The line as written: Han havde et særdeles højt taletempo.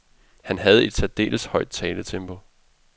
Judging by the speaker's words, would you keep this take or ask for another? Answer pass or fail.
pass